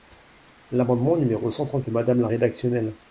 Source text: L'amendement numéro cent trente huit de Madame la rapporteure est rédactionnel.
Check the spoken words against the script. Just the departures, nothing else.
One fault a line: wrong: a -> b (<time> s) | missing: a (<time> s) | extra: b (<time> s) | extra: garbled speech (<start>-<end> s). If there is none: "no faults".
missing: huit (1.8 s)
missing: rapporteure est (2.3 s)